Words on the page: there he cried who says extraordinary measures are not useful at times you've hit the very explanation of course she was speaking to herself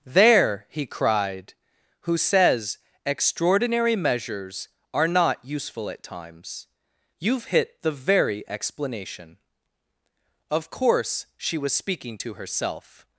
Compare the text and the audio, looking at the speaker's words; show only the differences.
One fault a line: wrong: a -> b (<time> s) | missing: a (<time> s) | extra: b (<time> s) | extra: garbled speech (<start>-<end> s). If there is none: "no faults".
no faults